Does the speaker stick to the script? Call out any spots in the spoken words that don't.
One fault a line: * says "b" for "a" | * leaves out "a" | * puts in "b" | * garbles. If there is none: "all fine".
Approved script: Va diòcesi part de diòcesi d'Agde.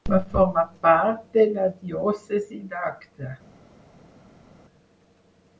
* says "formar" for "diòcesi"
* puts in "la"